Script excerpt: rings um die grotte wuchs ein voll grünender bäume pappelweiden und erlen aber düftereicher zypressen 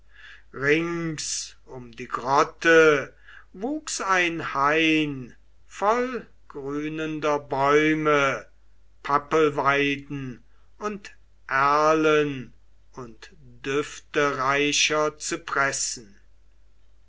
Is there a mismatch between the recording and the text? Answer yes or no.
yes